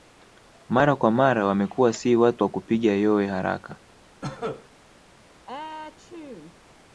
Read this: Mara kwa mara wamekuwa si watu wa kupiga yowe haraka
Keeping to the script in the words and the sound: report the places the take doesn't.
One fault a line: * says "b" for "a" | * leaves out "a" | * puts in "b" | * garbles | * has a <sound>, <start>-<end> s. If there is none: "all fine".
* has a cough, 4.2-4.7 s
* has a sneeze, 5.5-6.6 s